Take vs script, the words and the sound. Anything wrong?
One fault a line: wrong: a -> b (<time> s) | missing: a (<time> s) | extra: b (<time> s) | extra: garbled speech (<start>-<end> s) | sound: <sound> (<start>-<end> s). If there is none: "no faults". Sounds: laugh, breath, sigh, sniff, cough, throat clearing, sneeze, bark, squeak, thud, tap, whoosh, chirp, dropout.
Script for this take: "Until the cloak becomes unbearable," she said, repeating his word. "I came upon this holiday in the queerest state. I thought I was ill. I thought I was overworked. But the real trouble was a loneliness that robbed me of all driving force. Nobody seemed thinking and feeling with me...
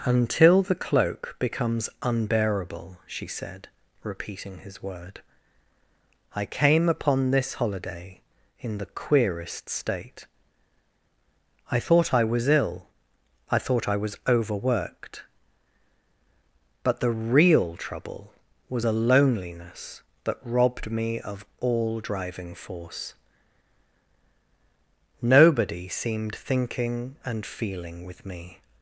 no faults